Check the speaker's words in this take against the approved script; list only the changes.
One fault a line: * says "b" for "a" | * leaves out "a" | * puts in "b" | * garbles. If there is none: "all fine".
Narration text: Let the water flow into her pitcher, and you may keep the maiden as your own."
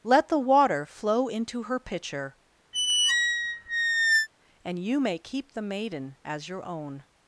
all fine